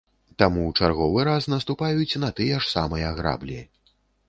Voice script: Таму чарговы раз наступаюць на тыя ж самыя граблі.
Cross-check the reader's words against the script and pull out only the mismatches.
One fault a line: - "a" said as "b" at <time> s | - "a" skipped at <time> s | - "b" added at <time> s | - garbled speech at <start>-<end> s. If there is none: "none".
none